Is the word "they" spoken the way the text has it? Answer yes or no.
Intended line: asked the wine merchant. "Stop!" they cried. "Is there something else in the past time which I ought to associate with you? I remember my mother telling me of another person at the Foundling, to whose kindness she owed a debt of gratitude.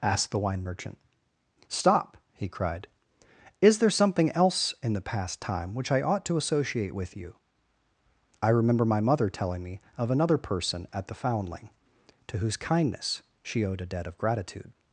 no